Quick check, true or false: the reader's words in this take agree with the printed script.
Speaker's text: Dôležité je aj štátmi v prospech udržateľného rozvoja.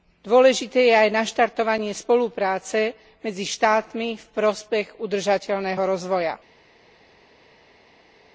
false